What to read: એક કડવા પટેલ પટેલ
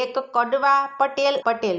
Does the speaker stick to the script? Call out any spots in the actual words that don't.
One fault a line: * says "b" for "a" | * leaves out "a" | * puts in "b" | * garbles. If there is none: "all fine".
all fine